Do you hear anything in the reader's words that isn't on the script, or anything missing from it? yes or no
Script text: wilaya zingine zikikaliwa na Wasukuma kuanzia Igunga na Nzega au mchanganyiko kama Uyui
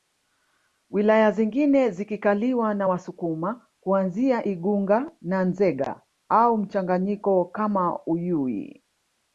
no